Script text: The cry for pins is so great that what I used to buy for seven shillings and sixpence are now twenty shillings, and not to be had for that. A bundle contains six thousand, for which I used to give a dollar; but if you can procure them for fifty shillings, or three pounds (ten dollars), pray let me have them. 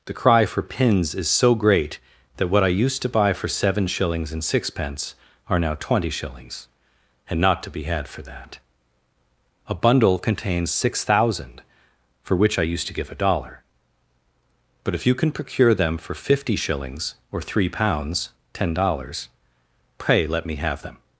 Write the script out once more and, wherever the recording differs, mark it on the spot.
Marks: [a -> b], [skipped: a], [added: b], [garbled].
The cry for pins is so great that what I used to buy for seven shillings and sixpence are now twenty shillings, and not to be had for that. A bundle contains six thousand, for which I used to give a dollar; but if you can procure them for fifty shillings, or three pounds (ten dollars), pray let me have them.